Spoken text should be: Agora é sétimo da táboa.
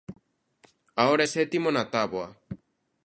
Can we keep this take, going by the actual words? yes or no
no